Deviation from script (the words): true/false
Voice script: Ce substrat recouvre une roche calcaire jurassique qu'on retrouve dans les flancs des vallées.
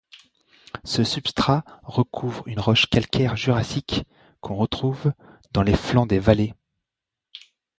false